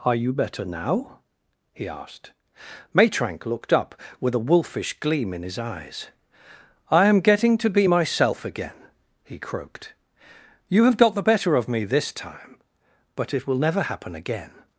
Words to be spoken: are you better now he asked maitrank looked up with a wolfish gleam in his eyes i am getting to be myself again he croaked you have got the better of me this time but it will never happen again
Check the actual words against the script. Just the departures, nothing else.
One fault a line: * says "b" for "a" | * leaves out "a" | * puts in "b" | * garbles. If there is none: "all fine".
all fine